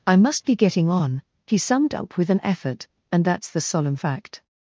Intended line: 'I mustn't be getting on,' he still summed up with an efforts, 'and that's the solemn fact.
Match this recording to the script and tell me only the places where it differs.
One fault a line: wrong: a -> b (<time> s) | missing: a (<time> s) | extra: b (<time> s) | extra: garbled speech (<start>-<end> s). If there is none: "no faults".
wrong: mustn't -> must (0.2 s)
missing: still (1.6 s)
wrong: efforts -> effort (2.4 s)